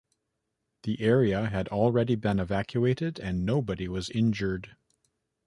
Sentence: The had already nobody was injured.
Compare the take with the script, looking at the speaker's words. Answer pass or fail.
fail